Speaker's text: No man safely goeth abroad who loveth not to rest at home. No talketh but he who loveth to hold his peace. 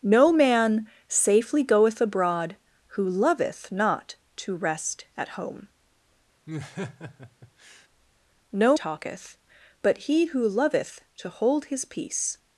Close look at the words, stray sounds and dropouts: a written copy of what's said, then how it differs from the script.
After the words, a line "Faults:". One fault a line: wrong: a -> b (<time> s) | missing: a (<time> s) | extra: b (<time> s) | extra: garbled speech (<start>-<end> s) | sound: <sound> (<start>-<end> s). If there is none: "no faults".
No man safely goeth abroad who loveth not to rest at home. No talketh but he who loveth to hold his peace.
Faults:
sound: laugh (6.5-7.9 s)